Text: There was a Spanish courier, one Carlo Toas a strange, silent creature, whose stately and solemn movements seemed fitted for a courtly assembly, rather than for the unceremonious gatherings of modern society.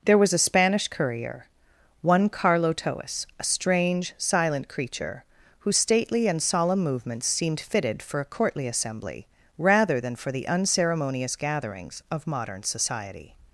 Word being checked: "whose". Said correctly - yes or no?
yes